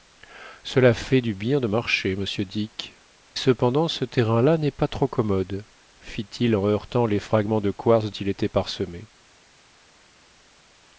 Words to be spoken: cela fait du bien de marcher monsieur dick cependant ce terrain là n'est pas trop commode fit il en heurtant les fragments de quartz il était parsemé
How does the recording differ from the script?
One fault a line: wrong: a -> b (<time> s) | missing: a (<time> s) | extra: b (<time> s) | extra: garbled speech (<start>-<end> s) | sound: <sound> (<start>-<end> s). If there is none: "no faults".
no faults